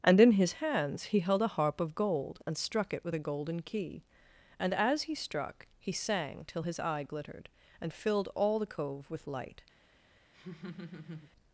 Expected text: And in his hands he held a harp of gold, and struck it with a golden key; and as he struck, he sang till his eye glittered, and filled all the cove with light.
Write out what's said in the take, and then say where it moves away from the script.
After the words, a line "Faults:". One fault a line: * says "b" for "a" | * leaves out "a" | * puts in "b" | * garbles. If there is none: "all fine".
And in his hands he held a harp of gold, and struck it with a golden key; and as he struck, he sang till his eye glittered, and filled all the cove with light.
Faults:
all fine